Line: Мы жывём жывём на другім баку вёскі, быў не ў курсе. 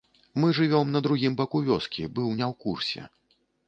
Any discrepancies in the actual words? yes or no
yes